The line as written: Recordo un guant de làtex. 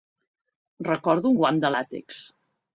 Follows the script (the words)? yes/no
yes